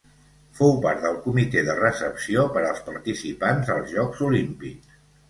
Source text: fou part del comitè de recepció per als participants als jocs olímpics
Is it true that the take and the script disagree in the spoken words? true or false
false